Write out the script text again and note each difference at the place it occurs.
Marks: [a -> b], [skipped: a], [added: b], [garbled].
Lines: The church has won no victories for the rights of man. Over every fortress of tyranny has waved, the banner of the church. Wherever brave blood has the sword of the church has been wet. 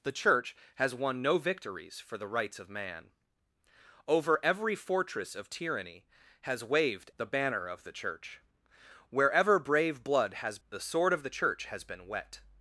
The church has won no victories for the rights of man. Over every fortress of tyranny has waved, the banner of the church. Wherever brave blood has the sword of the church has been wet.